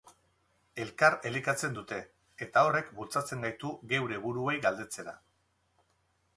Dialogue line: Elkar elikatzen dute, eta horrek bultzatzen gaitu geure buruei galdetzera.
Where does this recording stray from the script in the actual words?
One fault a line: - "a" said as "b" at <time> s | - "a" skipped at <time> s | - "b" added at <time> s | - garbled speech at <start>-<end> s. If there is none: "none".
none